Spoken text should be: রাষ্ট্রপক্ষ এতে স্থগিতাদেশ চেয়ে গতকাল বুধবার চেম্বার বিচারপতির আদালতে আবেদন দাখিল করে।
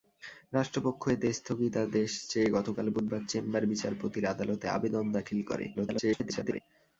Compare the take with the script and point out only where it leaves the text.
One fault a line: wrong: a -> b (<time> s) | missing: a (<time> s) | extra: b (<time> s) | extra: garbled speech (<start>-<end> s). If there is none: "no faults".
extra: garbled speech (5.7-6.6 s)